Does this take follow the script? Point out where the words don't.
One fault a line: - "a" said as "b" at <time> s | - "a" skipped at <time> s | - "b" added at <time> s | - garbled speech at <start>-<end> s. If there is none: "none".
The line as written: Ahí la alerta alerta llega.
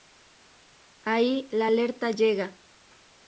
- "alerta" skipped at 2.1 s